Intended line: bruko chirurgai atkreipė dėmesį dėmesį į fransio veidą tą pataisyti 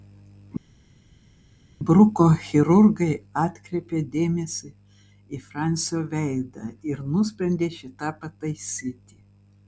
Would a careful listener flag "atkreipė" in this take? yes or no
no